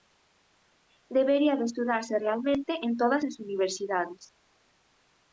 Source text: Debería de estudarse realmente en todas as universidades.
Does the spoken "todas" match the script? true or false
true